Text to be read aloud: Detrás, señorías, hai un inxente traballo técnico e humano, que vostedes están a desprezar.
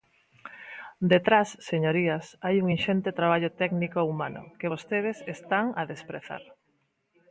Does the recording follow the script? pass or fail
pass